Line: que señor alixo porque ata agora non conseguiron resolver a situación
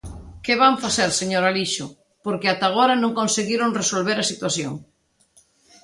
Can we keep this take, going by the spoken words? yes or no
no